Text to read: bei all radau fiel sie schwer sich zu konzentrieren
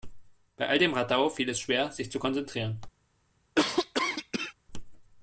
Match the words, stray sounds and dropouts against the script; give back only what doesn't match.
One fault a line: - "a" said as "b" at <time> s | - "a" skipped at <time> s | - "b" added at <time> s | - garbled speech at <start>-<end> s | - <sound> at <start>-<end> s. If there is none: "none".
- "dem" added at 0.8 s
- "sie" said as "es" at 1.5 s
- cough at 3.5-4.5 s